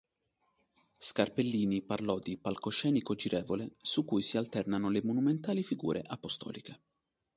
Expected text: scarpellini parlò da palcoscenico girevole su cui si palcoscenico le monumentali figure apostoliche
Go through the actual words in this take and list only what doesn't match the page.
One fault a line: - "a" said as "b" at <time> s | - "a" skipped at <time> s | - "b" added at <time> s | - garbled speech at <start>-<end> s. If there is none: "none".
- "da" said as "di" at 2.2 s
- "palcoscenico" said as "alternano" at 4.4 s